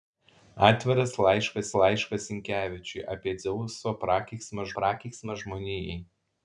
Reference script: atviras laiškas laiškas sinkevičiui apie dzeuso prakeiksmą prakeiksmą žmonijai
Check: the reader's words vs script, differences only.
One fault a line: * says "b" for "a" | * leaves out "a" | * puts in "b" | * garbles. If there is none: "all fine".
all fine